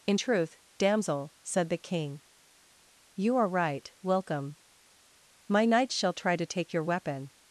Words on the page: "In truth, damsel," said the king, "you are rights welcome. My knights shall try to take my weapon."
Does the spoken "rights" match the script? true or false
false